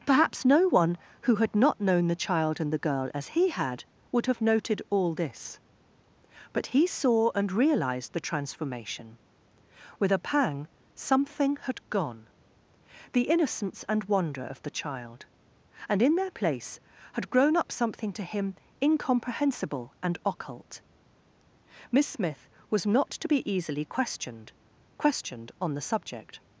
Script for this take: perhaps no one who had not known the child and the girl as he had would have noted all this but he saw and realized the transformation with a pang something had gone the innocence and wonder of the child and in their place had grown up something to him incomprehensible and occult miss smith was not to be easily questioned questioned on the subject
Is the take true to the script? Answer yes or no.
yes